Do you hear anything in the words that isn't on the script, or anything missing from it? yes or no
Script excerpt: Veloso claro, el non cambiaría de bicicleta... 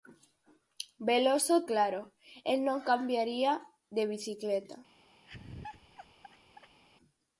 no